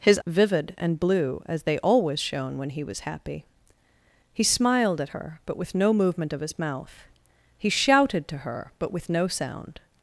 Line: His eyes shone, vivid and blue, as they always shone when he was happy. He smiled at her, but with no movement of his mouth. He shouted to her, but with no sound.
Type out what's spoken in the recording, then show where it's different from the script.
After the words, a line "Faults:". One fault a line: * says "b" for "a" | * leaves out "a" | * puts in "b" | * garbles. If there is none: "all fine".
His vivid and blue, as they always shone when he was happy. He smiled at her, but with no movement of his mouth. He shouted to her, but with no sound.
Faults:
* leaves out "eyes shone"